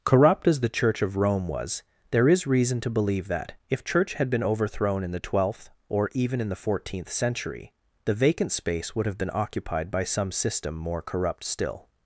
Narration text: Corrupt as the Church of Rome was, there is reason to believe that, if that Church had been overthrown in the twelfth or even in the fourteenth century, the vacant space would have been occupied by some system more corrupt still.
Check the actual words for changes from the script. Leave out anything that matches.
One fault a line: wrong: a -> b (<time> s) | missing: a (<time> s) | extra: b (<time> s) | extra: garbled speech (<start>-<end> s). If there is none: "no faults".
missing: that (3.8 s)